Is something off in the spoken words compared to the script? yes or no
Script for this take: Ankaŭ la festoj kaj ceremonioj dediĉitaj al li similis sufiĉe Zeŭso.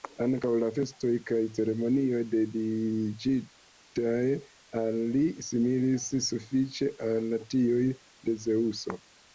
yes